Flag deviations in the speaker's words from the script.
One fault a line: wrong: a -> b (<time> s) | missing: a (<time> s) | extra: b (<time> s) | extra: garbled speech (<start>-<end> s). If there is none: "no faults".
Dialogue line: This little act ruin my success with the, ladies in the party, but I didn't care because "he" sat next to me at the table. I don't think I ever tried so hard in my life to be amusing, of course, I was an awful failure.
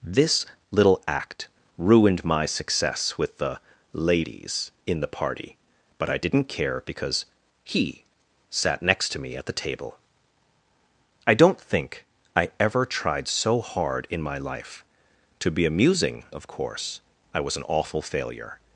wrong: ruin -> ruined (1.8 s)